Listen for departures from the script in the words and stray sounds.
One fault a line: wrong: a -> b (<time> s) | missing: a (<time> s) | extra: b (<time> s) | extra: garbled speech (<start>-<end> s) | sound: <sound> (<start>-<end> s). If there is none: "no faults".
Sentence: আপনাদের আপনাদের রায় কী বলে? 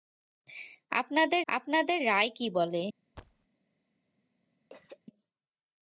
sound: thud (3.1-3.5 s)
sound: throat clearing (4.7-5.0 s)